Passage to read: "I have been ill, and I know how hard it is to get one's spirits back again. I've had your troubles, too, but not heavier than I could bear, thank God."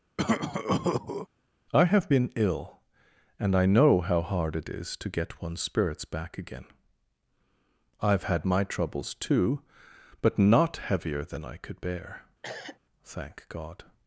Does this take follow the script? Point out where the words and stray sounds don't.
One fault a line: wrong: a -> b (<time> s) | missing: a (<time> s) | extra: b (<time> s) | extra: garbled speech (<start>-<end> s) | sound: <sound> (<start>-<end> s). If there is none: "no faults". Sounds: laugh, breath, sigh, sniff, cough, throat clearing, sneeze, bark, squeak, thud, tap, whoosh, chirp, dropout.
sound: cough (0.2-1.3 s)
wrong: your -> my (8.4 s)
sound: cough (12.4-12.8 s)